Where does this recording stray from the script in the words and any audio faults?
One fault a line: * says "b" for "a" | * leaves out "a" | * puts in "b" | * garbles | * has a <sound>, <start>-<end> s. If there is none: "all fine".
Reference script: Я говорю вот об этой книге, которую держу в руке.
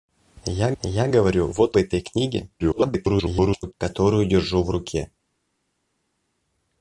* puts in "я"
* leaves out "об"
* garbles